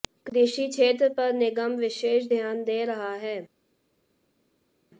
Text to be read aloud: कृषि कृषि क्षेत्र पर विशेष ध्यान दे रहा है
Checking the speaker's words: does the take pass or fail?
fail